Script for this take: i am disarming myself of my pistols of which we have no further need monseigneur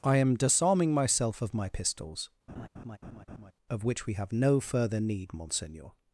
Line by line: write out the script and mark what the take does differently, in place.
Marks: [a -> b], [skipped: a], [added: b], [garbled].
i am disarming myself of my pistols of which we have no further need monseigneur